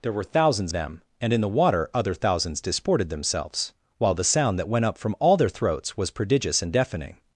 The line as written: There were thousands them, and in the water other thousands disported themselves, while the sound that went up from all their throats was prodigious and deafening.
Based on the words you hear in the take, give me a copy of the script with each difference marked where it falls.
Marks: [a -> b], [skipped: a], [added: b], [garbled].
There were thousands them, and in the water other thousands disported themselves, while the sound that went up from all their throats was prodigious and deafening.